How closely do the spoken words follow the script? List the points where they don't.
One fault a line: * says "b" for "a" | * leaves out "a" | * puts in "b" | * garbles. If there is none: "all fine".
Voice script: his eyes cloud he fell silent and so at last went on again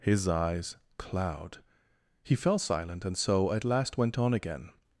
all fine